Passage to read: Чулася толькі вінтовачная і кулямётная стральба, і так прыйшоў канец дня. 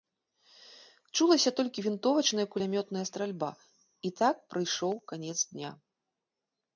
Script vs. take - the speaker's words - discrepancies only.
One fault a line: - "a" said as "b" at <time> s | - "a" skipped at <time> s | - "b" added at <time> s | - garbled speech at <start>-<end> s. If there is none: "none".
none